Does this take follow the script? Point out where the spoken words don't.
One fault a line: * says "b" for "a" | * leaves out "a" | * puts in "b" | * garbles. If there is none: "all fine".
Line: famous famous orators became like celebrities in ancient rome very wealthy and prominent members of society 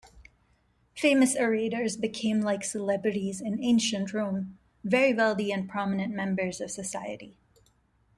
* leaves out "famous"